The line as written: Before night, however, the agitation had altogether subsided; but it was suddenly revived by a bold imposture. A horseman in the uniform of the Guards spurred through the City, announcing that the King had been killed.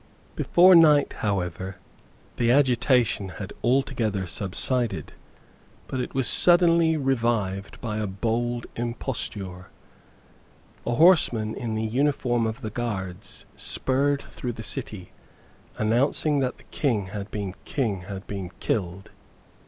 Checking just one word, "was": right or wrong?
right